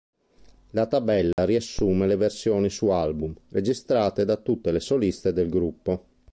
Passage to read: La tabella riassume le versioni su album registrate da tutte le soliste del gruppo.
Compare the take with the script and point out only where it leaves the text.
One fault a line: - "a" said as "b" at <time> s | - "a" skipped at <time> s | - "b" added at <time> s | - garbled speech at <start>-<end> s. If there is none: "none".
none